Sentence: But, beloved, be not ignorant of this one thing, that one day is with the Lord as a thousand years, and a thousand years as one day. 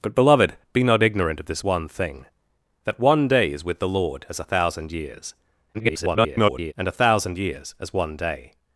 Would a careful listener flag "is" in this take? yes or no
no